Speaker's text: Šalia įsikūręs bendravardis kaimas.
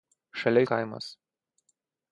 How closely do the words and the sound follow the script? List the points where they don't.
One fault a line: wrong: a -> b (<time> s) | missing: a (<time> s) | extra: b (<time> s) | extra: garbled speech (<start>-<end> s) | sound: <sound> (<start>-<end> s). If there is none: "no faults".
missing: įsikūręs bendravardis (0.6 s)